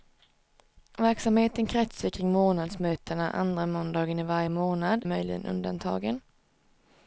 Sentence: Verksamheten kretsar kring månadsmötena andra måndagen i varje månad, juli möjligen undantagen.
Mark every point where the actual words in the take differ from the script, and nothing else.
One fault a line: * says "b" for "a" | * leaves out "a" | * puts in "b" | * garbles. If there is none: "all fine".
* leaves out "juli"